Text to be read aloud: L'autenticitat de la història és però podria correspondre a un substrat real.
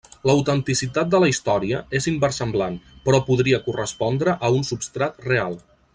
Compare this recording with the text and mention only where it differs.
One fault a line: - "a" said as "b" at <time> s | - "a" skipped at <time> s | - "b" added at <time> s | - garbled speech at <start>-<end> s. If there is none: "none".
- "inversemblant" added at 2.1 s